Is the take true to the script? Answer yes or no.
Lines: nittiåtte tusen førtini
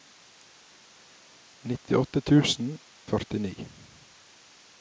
yes